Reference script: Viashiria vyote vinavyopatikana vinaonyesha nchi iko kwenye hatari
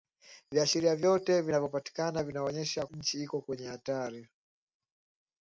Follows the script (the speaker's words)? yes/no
yes